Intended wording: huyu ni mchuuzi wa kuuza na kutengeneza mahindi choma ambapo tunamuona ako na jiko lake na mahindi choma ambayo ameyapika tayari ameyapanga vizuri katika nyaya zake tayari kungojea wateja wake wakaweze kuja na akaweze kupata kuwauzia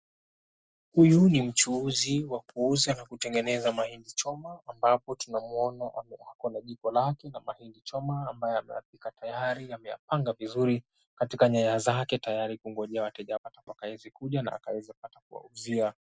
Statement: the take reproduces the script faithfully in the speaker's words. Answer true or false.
false